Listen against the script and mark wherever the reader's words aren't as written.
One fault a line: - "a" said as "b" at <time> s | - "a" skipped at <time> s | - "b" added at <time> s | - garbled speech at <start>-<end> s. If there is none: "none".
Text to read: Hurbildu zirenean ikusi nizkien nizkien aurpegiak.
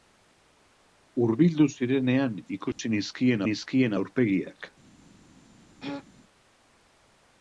none